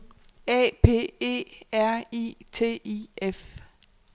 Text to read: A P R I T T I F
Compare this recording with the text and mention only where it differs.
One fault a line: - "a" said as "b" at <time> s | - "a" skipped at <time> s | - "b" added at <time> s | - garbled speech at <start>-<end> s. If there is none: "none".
- "E" added at 1.2 s
- "T" skipped at 2.8 s